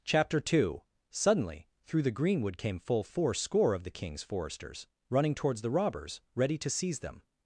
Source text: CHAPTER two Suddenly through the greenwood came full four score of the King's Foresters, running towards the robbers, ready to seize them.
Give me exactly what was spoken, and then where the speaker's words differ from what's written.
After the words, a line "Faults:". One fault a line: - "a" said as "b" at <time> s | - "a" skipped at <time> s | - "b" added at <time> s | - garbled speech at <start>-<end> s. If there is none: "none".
CHAPTER two Suddenly through the greenwood came full four score of the King's Foresters, running towards the robbers, ready to seize them.
Faults:
none